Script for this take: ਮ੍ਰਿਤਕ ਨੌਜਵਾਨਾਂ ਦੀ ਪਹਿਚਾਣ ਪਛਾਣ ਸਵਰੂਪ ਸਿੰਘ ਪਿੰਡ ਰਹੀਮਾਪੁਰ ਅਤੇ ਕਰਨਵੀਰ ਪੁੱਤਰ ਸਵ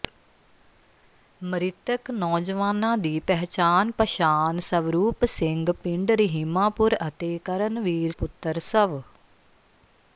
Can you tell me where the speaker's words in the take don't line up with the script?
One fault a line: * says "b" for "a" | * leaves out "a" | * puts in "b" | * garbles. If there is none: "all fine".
all fine